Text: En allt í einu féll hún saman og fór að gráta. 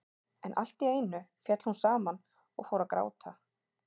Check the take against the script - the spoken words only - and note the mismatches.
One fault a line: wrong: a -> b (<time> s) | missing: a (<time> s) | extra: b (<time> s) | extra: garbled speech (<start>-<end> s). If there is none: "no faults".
no faults